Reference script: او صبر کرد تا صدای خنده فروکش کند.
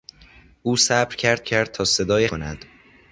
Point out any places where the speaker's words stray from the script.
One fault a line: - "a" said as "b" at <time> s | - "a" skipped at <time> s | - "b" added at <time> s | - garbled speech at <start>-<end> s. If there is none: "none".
- "کرد" added at 1.4 s
- "خنده فروکش" skipped at 2.3 s